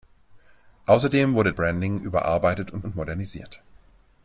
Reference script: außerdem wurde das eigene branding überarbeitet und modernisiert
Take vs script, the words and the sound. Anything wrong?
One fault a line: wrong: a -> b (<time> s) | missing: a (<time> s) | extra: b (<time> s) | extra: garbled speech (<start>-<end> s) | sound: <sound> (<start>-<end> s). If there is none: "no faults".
missing: das eigene (1.5 s)
extra: und (2.8 s)